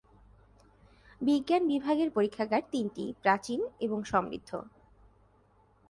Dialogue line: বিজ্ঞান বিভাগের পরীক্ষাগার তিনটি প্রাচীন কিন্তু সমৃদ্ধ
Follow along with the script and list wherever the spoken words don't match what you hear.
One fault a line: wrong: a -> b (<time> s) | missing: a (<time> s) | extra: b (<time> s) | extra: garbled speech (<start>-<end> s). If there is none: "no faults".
wrong: কিন্তু -> এবং (3.8 s)